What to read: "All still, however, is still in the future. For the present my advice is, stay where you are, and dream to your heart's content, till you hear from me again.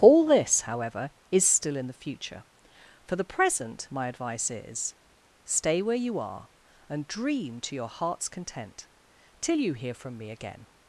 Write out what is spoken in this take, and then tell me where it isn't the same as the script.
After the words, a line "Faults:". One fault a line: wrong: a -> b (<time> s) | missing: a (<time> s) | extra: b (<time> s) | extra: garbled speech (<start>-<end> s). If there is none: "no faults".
"All this, however, is still in the future. For the present my advice is, stay where you are, and dream to your heart's content, till you hear from me again.
Faults:
wrong: still -> this (0.2 s)